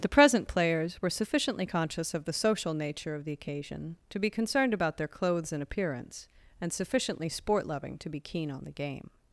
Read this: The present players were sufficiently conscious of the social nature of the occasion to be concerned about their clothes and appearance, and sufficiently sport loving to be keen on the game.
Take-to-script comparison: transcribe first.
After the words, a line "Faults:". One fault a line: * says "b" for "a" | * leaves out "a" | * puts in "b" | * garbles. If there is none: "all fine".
The present players were sufficiently conscious of the social nature of the occasion to be concerned about their clothes and appearance, and sufficiently sport loving to be keen on the game.
Faults:
all fine